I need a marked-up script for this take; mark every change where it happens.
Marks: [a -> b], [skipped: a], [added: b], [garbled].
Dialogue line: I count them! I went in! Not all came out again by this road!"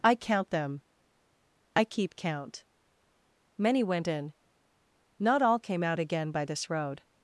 I count them! I [added: keep count Many] went in! Not all came out again by this road!"